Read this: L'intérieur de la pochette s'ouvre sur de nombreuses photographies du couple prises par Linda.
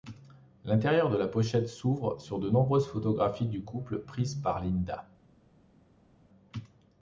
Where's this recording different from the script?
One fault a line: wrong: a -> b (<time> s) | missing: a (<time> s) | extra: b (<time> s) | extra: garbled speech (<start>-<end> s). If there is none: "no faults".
no faults